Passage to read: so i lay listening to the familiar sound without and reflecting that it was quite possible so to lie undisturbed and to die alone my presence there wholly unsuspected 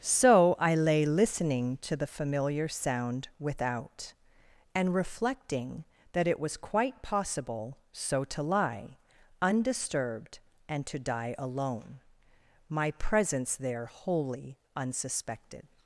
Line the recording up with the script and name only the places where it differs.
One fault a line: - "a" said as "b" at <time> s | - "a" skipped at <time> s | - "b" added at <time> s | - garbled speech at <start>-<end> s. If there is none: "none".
none